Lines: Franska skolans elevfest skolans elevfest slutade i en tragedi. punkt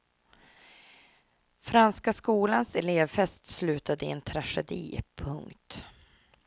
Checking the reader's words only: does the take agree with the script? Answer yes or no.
no